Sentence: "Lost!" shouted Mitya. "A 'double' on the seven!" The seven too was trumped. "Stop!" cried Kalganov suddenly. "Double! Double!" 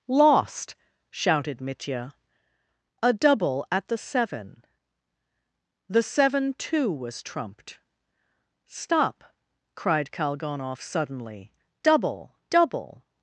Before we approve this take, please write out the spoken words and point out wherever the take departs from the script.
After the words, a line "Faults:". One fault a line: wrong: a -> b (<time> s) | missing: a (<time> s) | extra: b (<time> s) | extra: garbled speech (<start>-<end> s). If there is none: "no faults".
"Lost!" shouted Mitya. "A 'double' at the seven!" The seven too was trumped. "Stop!" cried Kalganov suddenly. "Double! Double!"
Faults:
wrong: on -> at (3.7 s)